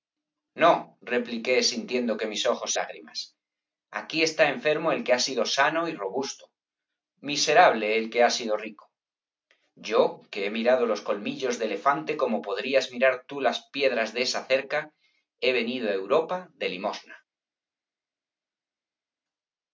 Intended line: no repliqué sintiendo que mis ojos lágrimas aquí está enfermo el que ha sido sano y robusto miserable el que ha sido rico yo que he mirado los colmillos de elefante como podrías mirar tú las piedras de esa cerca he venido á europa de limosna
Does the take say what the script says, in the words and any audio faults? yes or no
yes